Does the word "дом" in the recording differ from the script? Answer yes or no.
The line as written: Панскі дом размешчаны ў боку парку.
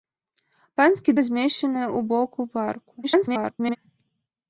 yes